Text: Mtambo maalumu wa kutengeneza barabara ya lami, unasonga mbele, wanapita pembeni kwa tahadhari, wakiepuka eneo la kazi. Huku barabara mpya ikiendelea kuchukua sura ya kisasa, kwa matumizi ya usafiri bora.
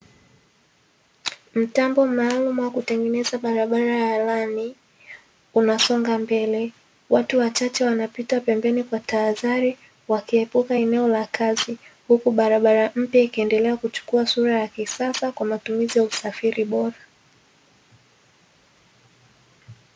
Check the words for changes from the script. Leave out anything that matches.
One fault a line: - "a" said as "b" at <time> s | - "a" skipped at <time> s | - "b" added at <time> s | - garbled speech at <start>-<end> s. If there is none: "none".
- "watu wachache" added at 7.1 s